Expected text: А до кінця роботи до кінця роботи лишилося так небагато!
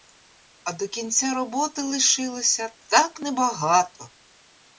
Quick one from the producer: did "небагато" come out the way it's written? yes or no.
yes